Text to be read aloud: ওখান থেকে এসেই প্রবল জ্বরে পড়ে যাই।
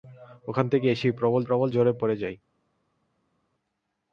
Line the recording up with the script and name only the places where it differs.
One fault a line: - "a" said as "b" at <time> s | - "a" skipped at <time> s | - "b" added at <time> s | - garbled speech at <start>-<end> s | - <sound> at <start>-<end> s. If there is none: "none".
- "প্রবল" added at 1.4 s